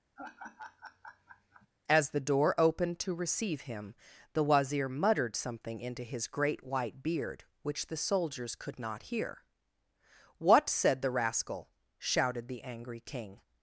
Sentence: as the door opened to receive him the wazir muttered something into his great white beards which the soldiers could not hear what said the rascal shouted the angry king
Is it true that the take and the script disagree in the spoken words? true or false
true